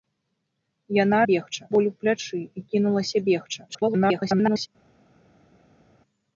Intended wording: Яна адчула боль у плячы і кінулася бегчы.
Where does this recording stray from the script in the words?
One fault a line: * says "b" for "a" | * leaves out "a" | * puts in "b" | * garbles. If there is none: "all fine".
* says "бегчы" for "адчула"
* garbles